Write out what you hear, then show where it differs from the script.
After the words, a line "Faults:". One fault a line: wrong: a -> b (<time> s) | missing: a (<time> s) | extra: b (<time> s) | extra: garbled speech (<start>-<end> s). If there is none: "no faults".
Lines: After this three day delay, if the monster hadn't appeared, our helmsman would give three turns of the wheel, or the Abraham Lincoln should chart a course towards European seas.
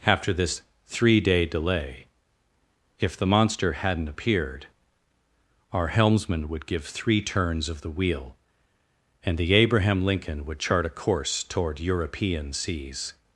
After this three day delay, if the monster hadn't appeared, our helmsman would give three turns of the wheel, and the Abraham Lincoln would chart a course toward European seas.
Faults:
wrong: or -> and (9.2 s)
wrong: should -> would (10.4 s)
wrong: towards -> toward (11.4 s)